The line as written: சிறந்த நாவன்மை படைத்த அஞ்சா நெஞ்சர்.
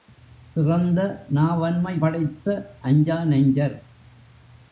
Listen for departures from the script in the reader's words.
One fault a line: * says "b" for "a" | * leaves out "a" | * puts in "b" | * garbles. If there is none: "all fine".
all fine